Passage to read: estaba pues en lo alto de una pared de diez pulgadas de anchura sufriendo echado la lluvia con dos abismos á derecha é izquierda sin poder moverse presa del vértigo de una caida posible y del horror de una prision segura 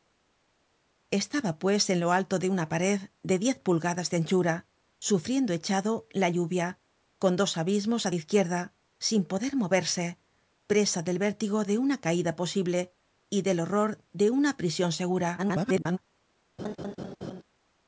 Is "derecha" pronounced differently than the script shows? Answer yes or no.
yes